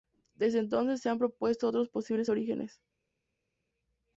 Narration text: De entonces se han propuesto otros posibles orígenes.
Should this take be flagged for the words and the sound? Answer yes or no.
yes